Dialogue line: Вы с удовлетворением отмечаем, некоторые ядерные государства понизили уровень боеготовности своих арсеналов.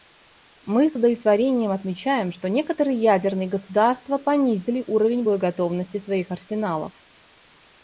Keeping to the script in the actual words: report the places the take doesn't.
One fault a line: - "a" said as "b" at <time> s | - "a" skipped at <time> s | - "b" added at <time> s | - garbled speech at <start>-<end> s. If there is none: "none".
- "Вы" said as "Мы" at 0.7 s
- "что" added at 2.3 s